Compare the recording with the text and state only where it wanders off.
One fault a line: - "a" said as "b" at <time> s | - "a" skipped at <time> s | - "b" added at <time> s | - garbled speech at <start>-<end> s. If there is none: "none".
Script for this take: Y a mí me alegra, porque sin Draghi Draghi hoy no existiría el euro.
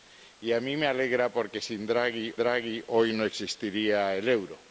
none